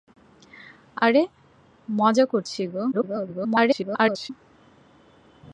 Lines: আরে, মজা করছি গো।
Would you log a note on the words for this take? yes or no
yes